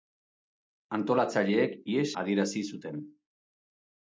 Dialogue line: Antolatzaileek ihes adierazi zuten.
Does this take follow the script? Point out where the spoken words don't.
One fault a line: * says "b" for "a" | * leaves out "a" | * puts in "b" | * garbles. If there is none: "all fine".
all fine